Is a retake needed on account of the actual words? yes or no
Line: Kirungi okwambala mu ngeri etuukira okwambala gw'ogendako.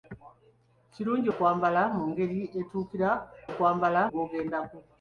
no